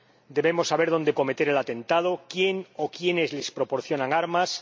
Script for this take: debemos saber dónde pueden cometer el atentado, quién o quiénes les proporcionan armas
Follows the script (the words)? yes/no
no